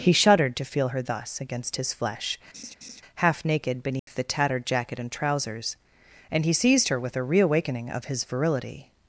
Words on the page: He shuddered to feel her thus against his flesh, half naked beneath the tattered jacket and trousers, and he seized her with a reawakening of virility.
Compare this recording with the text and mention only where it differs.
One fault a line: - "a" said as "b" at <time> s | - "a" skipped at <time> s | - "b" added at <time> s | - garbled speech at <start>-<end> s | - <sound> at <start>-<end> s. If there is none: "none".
- laugh at 2.5-3.0 s
- dropout at 4.0-4.1 s
- "his" added at 8.1 s